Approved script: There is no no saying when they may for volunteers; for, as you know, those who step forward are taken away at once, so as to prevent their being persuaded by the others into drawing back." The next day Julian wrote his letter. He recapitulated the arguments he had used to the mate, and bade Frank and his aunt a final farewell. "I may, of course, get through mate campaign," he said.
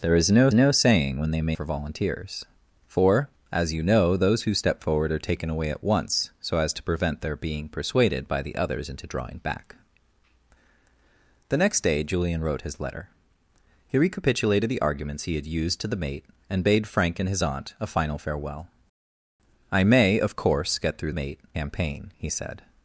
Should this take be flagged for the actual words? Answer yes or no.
no